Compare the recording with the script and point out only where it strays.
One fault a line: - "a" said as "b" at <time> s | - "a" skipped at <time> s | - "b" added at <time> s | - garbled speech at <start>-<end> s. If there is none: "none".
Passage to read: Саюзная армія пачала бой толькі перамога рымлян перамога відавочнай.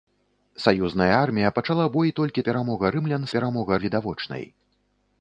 none